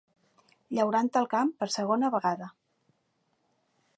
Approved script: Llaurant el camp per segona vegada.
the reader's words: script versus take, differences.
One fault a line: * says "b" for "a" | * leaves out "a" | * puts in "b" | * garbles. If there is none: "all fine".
all fine